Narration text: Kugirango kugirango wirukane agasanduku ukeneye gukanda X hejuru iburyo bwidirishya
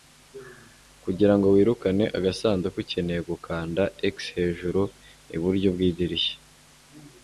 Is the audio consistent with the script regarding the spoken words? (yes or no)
no